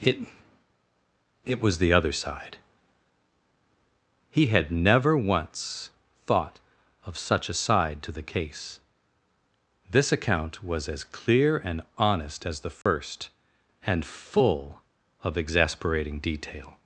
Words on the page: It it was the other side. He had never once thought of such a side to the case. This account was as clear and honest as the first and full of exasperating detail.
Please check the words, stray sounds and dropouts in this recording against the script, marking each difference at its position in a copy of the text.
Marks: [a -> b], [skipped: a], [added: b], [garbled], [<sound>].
It it was the other side. He had never once thought of such a side to the case. This account was as clear and honest as the first [dropout] and full of exasperating detail.